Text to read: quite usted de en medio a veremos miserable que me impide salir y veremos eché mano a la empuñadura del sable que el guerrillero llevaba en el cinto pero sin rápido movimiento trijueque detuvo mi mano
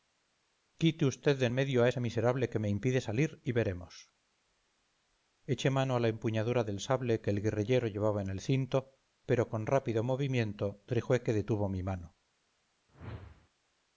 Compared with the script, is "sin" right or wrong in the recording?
wrong